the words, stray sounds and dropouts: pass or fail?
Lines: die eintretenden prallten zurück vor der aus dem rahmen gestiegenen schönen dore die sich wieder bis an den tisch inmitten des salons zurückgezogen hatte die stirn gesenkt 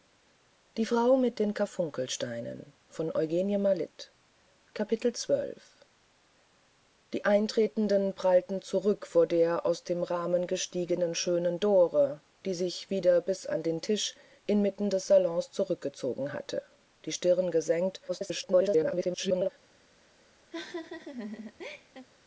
fail